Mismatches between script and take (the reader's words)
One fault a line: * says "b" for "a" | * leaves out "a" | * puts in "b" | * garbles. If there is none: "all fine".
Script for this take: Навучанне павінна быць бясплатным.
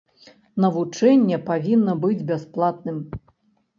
all fine